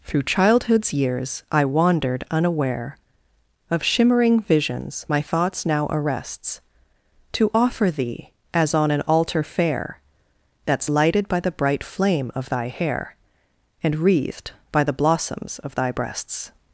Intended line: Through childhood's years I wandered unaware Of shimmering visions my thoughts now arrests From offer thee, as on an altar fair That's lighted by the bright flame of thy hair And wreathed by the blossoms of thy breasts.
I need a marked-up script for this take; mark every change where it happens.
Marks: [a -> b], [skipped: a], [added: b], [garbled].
Through childhood's years I wandered unaware Of shimmering visions my thoughts now arrests [From -> To] offer thee, as on an altar fair That's lighted by the bright flame of thy hair And wreathed by the blossoms of thy breasts.